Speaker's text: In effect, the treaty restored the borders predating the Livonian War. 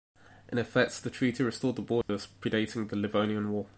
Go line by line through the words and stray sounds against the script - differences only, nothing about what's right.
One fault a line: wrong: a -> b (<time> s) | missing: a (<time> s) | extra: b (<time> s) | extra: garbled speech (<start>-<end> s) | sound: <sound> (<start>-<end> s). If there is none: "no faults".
sound: dropout (2.0-2.1 s)